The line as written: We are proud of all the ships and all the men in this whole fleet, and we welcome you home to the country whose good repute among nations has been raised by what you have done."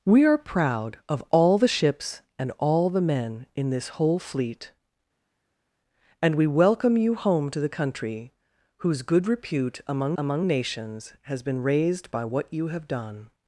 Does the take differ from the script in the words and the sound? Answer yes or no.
yes